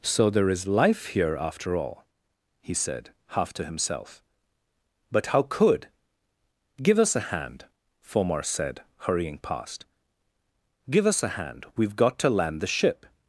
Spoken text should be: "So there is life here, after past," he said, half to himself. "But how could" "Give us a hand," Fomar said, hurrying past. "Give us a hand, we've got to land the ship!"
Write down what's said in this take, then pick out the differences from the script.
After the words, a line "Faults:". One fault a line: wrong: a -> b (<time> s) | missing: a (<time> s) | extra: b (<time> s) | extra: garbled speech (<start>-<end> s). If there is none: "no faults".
"So there is life here, after all," he said, half to himself. "But how could" "Give us a hand," Fomar said, hurrying past. "Give us a hand, we've got to land the ship!"
Faults:
wrong: past -> all (1.8 s)